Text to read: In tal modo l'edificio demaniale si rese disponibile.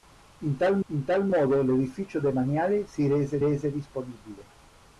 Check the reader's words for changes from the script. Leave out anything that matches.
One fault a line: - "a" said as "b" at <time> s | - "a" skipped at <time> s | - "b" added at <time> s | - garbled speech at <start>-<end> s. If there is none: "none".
- "in tal" added at 0.9 s
- "rese" added at 3.4 s